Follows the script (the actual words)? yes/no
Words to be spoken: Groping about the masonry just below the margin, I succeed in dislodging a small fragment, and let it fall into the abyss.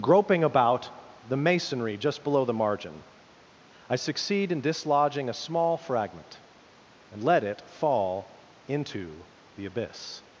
yes